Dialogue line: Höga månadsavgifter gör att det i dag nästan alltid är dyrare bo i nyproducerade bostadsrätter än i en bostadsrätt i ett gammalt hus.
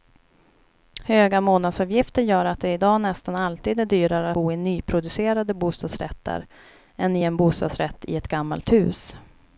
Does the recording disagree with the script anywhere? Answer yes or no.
no